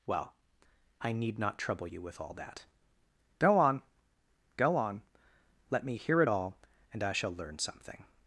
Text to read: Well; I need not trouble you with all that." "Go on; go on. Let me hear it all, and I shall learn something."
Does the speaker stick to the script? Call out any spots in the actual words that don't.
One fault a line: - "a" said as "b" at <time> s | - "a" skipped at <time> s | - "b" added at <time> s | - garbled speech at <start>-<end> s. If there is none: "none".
none